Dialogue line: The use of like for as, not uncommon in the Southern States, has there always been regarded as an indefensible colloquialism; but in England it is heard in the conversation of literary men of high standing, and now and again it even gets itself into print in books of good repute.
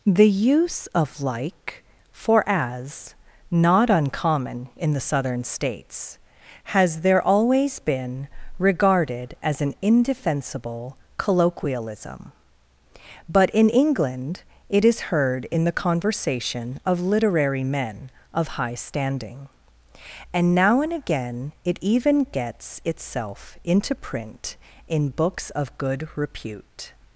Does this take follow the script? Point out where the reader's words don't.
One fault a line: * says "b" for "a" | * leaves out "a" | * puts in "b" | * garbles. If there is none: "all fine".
all fine